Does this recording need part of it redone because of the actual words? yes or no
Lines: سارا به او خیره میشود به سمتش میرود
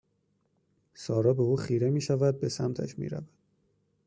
no